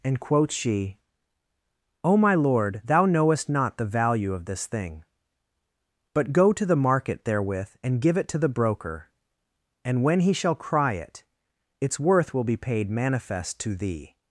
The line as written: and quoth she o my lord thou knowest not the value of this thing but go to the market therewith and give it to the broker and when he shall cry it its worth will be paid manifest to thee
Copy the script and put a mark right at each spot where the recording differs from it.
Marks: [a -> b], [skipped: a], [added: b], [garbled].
and quoth she o my lord thou knowest not the value of this thing but go to the market therewith and give it to the broker and when he shall cry it its worth will be paid manifest to thee